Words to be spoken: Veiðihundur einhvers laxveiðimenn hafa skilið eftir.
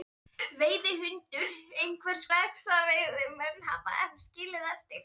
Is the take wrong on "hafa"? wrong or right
right